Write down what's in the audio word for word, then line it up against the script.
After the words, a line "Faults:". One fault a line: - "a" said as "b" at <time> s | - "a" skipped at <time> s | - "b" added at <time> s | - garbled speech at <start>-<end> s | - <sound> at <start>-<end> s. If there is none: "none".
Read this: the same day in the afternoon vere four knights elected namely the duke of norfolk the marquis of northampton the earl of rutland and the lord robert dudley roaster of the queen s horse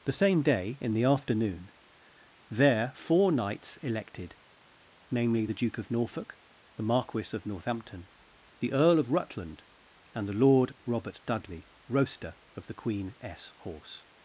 the same day in the afternoon there four knights elected namely the duke of norfolk the marquis of northampton the earl of rutland and the lord robert dudley roaster of the queen s horse
Faults:
- "vere" said as "there" at 2.5 s